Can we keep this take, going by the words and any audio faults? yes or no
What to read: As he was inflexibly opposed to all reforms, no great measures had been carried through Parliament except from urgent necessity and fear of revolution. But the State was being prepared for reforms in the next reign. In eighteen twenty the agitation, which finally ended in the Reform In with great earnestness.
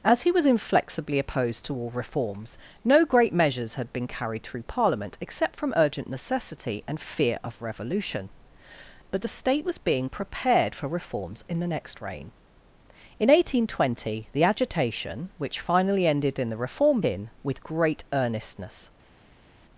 yes